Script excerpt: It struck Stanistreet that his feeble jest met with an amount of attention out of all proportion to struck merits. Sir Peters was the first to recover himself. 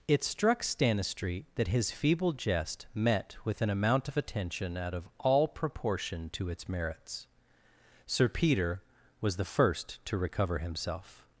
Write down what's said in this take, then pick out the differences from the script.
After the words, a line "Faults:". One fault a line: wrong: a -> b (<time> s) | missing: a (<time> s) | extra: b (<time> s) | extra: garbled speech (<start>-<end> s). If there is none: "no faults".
It struck Stanistreet that his feeble jest met with an amount of attention out of all proportion to its merits. Sir Peter was the first to recover himself.
Faults:
wrong: struck -> its (6.5 s)
wrong: Peters -> Peter (8.3 s)